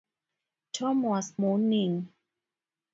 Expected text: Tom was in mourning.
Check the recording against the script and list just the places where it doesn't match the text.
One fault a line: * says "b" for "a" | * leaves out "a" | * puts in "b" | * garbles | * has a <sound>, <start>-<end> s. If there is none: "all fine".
* leaves out "in"